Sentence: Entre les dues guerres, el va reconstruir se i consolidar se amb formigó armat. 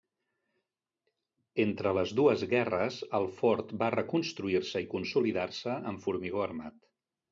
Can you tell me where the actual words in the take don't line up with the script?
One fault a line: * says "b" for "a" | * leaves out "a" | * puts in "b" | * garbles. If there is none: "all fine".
* puts in "fort"